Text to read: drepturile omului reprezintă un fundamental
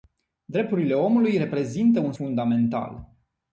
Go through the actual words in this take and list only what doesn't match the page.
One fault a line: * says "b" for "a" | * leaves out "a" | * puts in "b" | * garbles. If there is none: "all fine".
all fine